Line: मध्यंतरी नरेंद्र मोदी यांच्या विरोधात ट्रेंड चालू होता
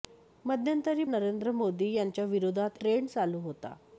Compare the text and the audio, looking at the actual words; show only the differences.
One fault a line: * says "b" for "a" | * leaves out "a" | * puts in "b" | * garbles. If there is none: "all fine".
all fine